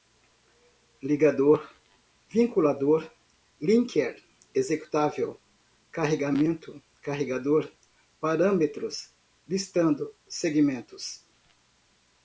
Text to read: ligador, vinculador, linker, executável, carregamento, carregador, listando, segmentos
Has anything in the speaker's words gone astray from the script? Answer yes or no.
yes